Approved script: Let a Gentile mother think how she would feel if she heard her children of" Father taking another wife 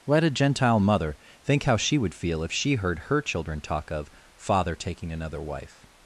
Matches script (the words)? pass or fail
fail